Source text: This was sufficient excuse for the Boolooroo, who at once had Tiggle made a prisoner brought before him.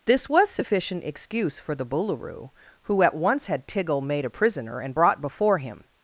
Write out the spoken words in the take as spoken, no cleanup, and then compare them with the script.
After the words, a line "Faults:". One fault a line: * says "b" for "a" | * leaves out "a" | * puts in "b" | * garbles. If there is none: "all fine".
This was sufficient excuse for the Boolooroo, who at once had Tiggle made a prisoner and brought before him.
Faults:
* puts in "and"